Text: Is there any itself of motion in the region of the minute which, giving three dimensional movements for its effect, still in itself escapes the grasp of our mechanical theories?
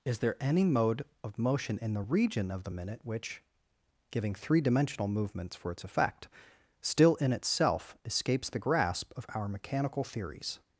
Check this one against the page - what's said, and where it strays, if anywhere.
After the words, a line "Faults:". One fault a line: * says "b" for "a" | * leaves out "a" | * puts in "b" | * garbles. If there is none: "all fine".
Is there any mode of motion in the region of the minute which, giving three dimensional movements for its effect, still in itself escapes the grasp of our mechanical theories?
Faults:
* says "mode" for "itself"